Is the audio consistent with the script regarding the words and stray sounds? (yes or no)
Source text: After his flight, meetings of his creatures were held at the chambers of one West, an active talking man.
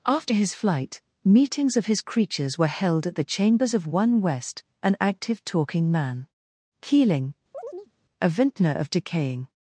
no